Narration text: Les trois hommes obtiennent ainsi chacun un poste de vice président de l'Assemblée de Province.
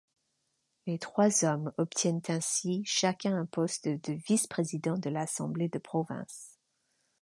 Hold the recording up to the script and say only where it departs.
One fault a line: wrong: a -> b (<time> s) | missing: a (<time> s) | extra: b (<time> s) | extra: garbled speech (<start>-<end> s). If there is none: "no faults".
no faults